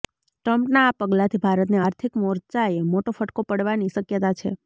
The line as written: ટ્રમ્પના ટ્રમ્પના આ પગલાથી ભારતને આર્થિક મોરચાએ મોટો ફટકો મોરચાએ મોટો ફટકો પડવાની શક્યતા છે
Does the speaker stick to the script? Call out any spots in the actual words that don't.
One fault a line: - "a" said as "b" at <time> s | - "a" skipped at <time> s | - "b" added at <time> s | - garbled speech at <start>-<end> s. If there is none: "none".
- "ટ્રમ્પના" skipped at 0.8 s
- "મોરચાએ મોટો ફટકો" skipped at 3.5 s